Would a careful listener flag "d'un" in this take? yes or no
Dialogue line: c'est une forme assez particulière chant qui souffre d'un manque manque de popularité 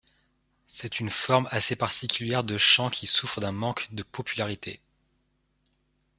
no